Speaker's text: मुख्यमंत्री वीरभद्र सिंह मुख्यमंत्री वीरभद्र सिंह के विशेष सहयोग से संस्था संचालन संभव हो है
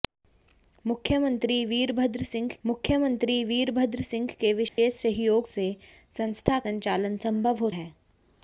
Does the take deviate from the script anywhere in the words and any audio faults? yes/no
yes